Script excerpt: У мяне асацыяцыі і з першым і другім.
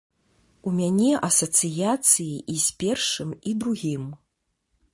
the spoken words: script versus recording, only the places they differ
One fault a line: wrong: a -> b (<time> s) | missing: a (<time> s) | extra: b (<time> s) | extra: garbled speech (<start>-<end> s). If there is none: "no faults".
no faults